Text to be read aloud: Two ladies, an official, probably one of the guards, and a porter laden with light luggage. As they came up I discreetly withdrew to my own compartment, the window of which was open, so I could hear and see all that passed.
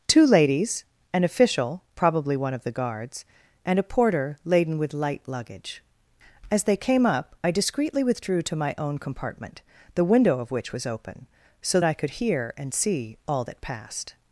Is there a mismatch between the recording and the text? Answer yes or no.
no